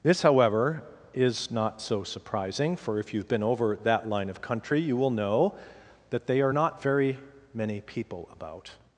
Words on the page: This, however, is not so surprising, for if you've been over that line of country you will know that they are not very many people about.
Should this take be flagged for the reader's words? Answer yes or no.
no